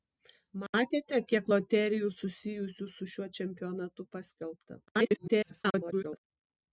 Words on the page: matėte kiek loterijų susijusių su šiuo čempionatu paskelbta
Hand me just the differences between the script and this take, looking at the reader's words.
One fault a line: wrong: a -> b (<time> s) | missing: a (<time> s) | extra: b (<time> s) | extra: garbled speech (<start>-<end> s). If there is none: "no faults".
extra: garbled speech (4.9-6.2 s)